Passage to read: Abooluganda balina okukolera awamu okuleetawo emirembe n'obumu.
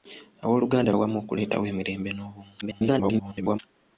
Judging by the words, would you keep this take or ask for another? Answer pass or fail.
fail